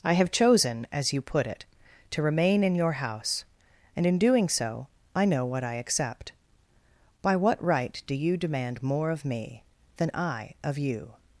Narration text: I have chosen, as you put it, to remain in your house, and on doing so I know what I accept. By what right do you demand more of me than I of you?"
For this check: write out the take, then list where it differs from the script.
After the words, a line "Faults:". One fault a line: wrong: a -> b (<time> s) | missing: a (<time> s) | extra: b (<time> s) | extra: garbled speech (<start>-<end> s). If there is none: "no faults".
I have chosen, as you put it, to remain in your house, and in doing so I know what I accept. By what right do you demand more of me than I of you?"
Faults:
wrong: on -> in (4.0 s)